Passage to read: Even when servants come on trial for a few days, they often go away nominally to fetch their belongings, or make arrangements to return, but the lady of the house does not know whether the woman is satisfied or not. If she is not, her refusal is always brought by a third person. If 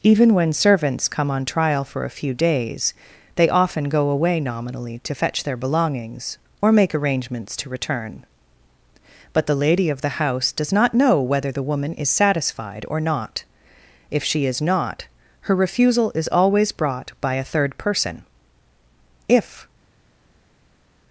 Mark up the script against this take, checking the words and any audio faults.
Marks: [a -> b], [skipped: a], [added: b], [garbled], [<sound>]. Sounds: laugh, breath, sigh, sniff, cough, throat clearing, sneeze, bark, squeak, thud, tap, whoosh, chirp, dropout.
Even when servants come on trial for a few days, they often go away nominally to fetch their belongings, or make arrangements to return, but the lady of the house does not know whether the woman is satisfied or not. If she is not, her refusal is always brought by a third person. If